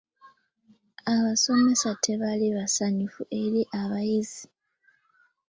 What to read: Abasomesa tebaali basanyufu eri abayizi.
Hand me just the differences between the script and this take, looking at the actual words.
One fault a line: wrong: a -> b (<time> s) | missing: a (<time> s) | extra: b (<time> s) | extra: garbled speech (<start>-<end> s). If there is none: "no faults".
no faults